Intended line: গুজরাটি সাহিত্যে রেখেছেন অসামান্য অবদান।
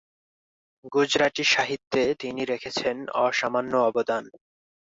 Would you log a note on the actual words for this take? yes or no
yes